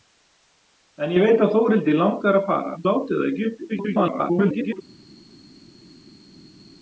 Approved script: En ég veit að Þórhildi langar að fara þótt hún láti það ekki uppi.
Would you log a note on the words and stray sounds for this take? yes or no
yes